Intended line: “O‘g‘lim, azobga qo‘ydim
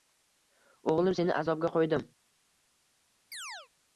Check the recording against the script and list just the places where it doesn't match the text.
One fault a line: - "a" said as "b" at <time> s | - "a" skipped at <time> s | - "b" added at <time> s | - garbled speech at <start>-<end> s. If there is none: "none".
- "seni" added at 1.2 s